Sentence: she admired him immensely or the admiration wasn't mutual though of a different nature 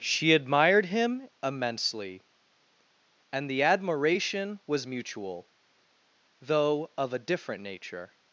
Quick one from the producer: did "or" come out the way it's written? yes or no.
no